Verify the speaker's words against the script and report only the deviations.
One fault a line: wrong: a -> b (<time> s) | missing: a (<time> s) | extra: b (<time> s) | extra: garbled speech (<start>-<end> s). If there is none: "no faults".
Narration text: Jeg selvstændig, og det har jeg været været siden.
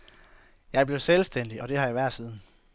extra: blev (0.9 s)
missing: været (2.1 s)